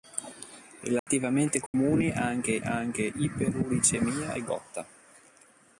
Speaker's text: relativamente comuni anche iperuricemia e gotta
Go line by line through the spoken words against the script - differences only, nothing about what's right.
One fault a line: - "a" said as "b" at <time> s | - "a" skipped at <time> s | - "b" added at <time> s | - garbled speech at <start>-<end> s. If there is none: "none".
- "anche" added at 2.6 s